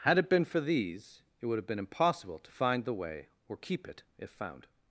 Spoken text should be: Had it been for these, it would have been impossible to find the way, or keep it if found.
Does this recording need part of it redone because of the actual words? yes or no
no